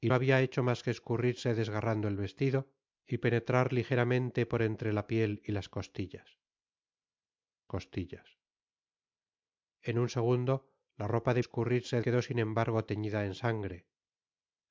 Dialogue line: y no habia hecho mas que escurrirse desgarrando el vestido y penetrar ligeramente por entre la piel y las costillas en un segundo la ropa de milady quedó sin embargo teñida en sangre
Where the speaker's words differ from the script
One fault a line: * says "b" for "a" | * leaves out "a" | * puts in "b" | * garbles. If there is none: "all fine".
* leaves out "no"
* puts in "costillas"
* says "escurrirse" for "milady"